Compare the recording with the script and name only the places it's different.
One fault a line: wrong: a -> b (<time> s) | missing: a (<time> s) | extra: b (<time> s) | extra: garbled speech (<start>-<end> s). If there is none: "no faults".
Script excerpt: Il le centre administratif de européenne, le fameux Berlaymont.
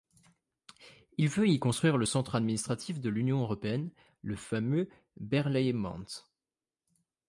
extra: veut y construire (1.3 s)
extra: l'Union (3.1 s)